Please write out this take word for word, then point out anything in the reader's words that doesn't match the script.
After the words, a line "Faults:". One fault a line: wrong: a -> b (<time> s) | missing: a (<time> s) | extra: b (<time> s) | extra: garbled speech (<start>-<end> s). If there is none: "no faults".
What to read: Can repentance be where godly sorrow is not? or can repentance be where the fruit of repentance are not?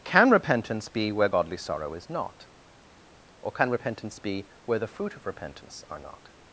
Can repentance be where godly sorrow is not? or can repentance be where the fruit of repentance are not?
Faults:
no faults